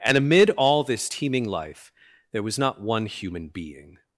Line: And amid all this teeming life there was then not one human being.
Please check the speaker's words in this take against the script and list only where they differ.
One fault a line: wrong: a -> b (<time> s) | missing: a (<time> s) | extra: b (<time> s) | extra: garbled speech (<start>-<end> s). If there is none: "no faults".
missing: then (2.6 s)